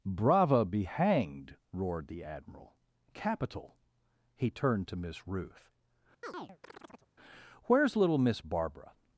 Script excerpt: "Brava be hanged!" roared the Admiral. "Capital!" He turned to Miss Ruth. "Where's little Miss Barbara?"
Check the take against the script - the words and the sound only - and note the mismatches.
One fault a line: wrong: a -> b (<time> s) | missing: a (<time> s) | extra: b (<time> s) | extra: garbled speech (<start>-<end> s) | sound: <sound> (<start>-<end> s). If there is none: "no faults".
sound: chirp (6.2-7.1 s)